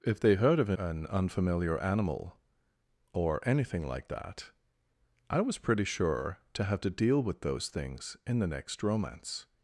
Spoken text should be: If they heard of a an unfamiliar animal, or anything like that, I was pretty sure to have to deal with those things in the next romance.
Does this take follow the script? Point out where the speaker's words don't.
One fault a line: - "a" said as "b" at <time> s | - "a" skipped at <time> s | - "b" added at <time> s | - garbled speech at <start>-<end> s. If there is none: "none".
none